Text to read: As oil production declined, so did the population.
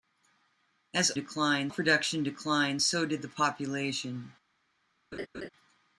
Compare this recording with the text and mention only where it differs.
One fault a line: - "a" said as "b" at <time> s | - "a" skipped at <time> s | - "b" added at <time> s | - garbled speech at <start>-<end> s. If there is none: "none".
- "oil" said as "declined" at 1.1 s